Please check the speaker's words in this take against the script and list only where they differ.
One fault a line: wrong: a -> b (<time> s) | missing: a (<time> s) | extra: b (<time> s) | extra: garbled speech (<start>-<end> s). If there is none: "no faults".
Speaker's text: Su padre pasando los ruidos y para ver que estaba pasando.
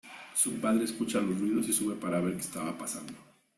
wrong: pasando -> escucha (0.8 s)
extra: sube (1.7 s)